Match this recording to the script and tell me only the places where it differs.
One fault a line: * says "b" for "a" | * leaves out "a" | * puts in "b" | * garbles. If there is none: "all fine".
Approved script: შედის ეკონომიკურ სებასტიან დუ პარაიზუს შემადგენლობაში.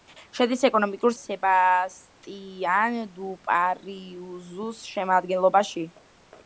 all fine